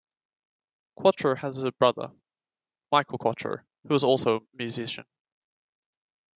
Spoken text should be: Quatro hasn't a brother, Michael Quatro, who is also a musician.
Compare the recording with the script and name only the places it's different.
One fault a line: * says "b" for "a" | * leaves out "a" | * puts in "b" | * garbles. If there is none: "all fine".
* says "has" for "hasn't"